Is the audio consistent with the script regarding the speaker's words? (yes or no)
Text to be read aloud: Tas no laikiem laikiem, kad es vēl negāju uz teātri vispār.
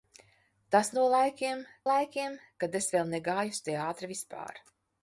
yes